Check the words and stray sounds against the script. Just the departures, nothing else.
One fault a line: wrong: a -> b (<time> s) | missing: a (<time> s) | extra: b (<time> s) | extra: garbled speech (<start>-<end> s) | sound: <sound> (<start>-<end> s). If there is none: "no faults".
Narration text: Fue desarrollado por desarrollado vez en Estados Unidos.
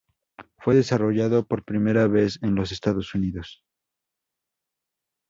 wrong: desarrollado -> primera (1.6 s)
extra: los (2.5 s)